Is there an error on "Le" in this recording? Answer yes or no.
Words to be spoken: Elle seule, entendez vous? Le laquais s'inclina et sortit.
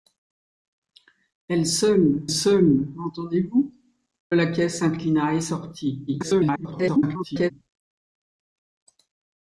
yes